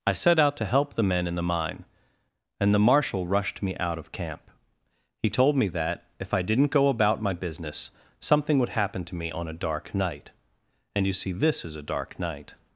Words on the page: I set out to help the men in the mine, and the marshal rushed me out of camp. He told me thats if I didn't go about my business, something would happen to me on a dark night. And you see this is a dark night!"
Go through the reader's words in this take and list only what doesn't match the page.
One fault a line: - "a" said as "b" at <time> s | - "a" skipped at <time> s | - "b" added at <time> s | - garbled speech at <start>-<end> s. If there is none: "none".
- "thats" said as "that" at 5.7 s